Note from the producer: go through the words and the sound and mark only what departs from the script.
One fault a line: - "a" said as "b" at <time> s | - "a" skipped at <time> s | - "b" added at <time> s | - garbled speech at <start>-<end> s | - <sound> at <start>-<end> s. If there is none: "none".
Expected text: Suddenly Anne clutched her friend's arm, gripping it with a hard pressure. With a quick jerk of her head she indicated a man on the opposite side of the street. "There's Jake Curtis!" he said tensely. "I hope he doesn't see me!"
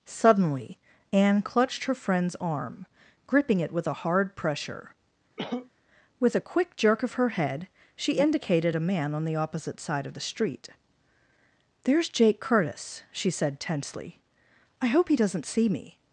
- cough at 5.4-5.7 s
- "he" said as "she" at 13.1 s